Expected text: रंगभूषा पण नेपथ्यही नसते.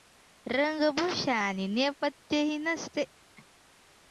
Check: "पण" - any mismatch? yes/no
yes